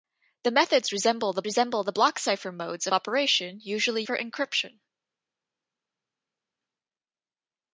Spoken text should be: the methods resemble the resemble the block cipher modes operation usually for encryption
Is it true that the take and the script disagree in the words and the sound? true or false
false